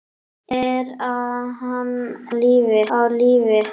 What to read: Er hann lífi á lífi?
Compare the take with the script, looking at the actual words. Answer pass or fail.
pass